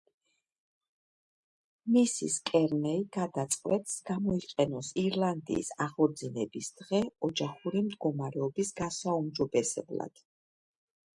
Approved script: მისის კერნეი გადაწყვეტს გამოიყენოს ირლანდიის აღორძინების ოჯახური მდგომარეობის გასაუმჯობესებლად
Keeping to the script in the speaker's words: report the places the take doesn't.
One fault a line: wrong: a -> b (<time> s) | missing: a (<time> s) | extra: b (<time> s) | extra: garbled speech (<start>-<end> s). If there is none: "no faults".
extra: დღე (6.8 s)